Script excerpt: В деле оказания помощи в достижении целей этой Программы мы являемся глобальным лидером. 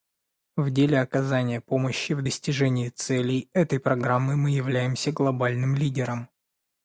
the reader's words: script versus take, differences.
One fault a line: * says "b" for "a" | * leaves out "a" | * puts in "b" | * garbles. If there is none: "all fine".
all fine